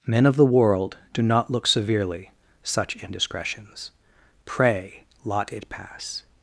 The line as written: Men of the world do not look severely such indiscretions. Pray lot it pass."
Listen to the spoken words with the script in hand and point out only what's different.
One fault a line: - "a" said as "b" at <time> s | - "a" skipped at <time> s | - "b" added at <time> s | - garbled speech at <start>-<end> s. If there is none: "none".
none